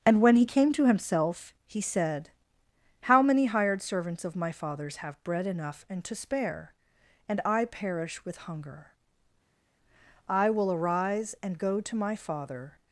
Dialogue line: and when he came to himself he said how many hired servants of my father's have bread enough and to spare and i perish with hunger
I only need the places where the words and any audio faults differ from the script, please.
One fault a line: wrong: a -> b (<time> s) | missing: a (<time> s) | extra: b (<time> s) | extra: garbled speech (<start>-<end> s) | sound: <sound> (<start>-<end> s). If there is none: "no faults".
extra: i will arise and go to my father (10.3 s)